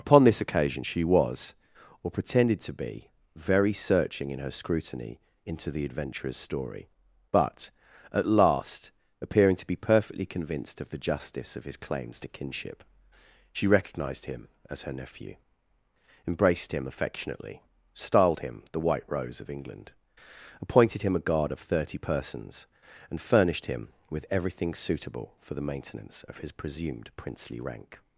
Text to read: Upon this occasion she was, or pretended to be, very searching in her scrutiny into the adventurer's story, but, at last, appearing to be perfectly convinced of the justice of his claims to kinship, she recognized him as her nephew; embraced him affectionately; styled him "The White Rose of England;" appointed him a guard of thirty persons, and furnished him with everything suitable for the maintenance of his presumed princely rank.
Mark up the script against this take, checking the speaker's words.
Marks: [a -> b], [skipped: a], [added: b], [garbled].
Upon this occasion she was, or pretended to be, very searching in her scrutiny into the adventurer's story, but, at last, appearing to be perfectly convinced of the justice of his claims to kinship, she recognized him as her nephew; embraced him affectionately; styled him "The White Rose of England;" appointed him a guard of thirty persons, and furnished him with everything suitable for the maintenance of his presumed princely rank.